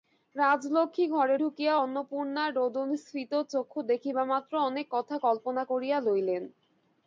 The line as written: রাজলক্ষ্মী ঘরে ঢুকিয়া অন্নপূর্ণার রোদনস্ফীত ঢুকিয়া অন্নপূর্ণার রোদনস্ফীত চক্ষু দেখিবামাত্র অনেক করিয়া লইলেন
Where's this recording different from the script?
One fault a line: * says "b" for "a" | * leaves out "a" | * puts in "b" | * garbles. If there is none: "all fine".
* leaves out "ঢুকিয়া অন্নপূর্ণার রোদনস্ফীত"
* puts in "কথা কল্পনা"